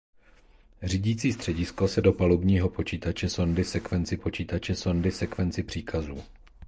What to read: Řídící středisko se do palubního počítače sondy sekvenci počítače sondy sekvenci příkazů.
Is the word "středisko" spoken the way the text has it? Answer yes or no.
yes